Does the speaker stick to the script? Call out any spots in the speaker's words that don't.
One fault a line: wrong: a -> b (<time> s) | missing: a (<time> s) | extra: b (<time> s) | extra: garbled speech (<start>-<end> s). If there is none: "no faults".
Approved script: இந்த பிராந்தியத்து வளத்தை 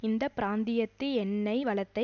extra: எண்ணெய் (1.1 s)